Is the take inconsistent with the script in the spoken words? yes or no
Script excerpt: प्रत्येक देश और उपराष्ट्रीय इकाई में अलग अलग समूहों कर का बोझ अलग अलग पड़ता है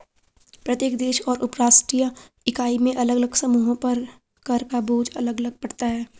yes